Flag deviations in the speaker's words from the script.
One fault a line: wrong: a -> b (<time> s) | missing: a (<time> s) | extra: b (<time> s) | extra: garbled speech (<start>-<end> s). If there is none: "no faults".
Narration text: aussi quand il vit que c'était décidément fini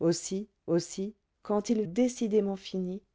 extra: aussi (0.7 s)
missing: vit que c'était (1.8 s)